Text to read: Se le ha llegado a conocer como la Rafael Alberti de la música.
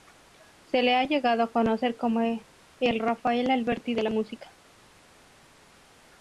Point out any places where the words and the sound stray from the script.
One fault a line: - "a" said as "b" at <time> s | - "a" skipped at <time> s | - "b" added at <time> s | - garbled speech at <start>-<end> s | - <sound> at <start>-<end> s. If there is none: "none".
- "la" said as "el" at 2.8 s